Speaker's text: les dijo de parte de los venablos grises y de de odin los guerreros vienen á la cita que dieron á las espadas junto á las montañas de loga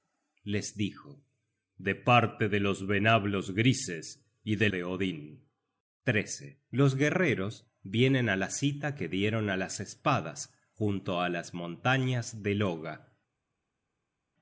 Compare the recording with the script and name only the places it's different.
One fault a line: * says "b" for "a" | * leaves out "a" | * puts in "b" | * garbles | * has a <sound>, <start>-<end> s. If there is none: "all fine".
all fine